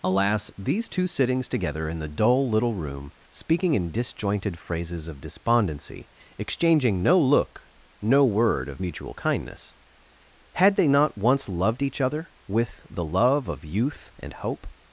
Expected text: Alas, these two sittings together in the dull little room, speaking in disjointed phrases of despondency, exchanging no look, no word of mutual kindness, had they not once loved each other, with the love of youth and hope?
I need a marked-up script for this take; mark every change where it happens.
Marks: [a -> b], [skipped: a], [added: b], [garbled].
Alas, these two sittings together in the dull little room, speaking in disjointed phrases of despondency, exchanging no look, no word of mutual kindness, had they not once loved each other, with the love of youth and hope?